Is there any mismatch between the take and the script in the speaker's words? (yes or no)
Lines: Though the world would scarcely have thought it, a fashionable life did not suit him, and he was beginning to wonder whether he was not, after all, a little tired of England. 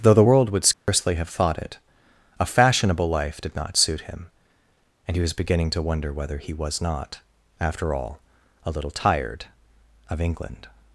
no